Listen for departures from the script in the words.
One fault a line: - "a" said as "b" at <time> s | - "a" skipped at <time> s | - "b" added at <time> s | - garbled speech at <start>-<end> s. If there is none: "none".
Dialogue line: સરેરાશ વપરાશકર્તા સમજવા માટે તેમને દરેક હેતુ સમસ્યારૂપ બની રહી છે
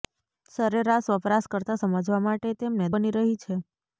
- "દરેક હેતુ સમસ્યારૂપ" skipped at 2.9 s